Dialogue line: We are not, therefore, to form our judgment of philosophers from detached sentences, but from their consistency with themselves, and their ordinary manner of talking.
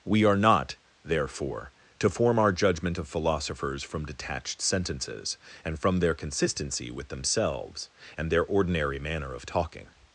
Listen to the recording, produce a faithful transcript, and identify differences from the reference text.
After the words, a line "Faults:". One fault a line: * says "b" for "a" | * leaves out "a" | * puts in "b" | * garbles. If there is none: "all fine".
We are not, therefore, to form our judgment of philosophers from detached sentences, and from their consistency with themselves, and their ordinary manner of talking.
Faults:
* says "and" for "but"